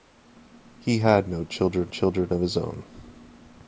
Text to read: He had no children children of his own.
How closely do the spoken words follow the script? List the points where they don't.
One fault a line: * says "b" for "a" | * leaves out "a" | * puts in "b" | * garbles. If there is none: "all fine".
all fine